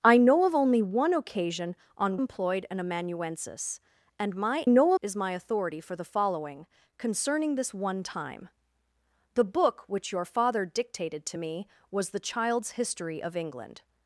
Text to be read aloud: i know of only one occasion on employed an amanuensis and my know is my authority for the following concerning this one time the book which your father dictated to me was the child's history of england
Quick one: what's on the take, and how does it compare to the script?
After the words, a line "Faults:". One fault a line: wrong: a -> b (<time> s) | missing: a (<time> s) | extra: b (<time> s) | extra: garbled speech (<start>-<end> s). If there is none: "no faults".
i know of only one occasion on employed an amanuensis and my know is my authority for the following concerning this one time the book which your father dictated to me was the child's history of england
Faults:
no faults